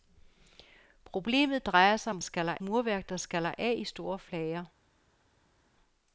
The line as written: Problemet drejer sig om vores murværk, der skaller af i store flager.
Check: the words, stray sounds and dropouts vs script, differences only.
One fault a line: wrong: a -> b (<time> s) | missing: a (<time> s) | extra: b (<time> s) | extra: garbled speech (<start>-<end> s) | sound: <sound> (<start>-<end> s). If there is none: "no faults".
wrong: vores -> skaller (2.2 s)